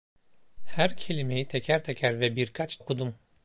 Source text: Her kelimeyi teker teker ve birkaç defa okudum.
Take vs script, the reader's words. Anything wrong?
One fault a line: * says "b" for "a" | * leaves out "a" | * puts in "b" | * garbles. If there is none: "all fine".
* leaves out "defa"